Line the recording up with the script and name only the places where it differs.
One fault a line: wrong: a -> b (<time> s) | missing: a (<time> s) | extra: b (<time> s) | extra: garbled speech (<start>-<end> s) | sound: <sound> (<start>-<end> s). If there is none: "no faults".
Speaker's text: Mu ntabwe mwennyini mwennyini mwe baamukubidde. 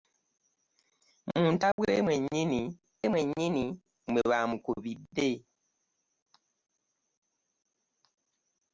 sound: dropout (1.7-1.8 s)